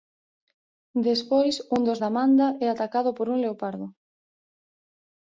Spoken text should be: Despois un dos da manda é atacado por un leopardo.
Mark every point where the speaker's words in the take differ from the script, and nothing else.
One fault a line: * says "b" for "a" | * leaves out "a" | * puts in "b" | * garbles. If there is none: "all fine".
all fine